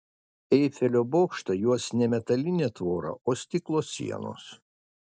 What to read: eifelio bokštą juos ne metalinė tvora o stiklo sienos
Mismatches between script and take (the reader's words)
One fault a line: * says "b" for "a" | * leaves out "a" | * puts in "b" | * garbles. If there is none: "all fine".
all fine